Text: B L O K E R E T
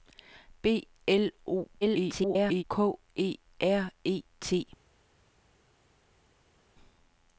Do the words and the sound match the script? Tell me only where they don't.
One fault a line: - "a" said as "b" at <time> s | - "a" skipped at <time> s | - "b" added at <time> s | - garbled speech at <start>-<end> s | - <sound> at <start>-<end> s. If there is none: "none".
- garbled speech at 1.8-2.6 s